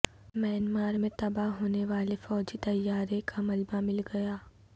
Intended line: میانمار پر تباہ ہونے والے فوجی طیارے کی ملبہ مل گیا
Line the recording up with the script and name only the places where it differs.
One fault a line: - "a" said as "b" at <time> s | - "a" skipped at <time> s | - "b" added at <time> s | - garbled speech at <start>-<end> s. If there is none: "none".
- "پر" said as "میں" at 1.0 s
- "کی" said as "کا" at 3.3 s